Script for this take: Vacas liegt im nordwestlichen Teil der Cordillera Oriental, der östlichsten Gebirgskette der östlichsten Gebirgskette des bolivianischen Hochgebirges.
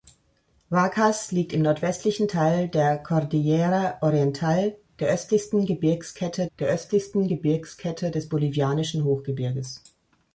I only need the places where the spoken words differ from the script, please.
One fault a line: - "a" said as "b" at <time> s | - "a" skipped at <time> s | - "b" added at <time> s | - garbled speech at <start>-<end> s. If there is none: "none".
none